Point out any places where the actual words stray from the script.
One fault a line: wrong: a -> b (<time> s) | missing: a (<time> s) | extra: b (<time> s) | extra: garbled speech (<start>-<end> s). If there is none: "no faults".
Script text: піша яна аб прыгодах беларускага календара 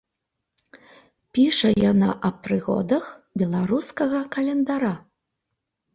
no faults